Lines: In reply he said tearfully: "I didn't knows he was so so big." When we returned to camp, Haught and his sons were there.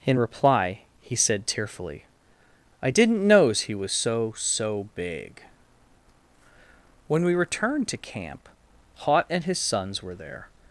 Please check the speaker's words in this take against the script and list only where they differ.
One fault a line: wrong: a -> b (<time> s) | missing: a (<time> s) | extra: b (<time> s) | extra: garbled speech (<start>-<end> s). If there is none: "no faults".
no faults